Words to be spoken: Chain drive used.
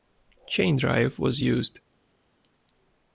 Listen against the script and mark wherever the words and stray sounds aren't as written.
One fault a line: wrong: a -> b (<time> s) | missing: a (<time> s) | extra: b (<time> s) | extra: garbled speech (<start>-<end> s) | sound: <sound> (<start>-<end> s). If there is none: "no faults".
extra: was (1.2 s)